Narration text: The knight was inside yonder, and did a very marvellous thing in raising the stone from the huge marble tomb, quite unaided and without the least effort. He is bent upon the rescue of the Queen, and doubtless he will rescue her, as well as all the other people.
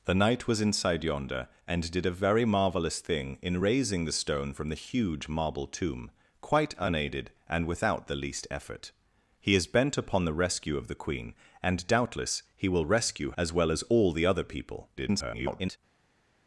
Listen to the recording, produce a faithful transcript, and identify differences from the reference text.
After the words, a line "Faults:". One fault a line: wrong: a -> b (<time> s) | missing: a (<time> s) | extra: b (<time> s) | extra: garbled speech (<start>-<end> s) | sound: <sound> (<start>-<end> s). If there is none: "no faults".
The knight was inside yonder, and did a very marvellous thing in raising the stone from the huge marble tomb, quite unaided and without the least effort. He is bent upon the rescue of the Queen, and doubtless he will rescue as well as all the other people. [garbled]
Faults:
missing: her (13.3 s)
extra: garbled speech (15.0-15.8 s)